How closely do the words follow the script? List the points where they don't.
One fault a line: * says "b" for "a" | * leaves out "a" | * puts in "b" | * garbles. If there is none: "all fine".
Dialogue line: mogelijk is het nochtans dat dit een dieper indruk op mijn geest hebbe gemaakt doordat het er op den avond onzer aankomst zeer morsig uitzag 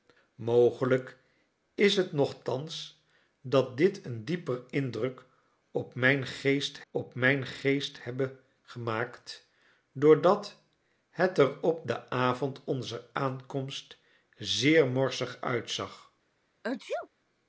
* puts in "op mijn geest"